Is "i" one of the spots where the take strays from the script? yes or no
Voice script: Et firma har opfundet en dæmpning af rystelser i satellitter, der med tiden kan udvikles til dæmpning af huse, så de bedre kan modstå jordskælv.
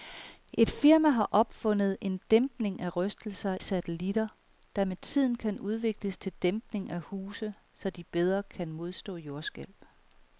yes